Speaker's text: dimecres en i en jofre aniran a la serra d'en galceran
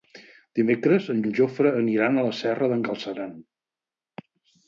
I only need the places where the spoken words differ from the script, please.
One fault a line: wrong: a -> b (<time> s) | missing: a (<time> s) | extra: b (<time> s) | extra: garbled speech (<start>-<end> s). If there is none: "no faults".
no faults